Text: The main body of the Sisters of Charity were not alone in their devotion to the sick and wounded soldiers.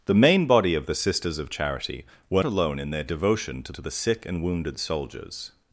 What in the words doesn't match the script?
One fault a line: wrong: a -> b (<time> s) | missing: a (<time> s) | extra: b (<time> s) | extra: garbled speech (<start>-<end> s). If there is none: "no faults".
missing: not (2.4 s)
extra: to (3.7 s)